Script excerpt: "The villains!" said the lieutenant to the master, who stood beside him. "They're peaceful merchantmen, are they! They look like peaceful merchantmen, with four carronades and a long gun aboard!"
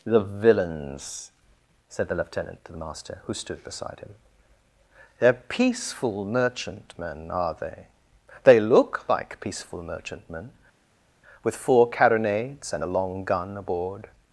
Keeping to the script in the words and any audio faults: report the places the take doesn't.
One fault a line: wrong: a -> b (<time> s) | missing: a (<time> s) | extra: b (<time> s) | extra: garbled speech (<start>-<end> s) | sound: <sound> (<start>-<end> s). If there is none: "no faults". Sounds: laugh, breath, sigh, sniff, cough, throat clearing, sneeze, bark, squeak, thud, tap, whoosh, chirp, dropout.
no faults